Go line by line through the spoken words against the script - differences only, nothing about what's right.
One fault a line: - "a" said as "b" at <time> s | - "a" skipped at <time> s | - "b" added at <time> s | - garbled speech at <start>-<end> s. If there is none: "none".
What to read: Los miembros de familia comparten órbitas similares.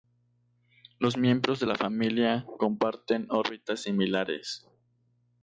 - "la" added at 1.6 s